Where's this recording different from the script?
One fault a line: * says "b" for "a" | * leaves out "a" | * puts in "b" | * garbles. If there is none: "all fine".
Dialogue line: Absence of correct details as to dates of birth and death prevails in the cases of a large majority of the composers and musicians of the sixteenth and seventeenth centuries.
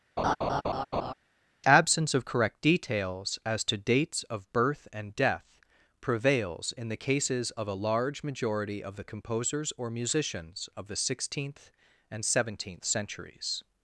* says "or" for "and"